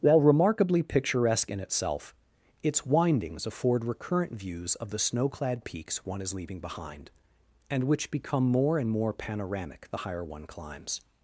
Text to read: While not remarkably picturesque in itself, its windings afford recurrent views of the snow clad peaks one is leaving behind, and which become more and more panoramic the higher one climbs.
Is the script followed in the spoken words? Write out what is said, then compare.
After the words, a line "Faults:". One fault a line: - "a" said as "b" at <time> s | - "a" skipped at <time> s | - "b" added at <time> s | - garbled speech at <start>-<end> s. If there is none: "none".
While remarkably picturesque in itself, its windings afford recurrent views of the snow clad peaks one is leaving behind, and which become more and more panoramic the higher one climbs.
Faults:
- "not" skipped at 0.2 s